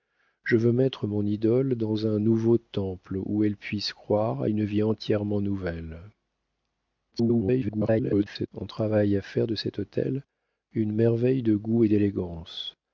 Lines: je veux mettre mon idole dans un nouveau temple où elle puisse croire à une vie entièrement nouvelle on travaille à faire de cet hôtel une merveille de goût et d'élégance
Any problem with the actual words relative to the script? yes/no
yes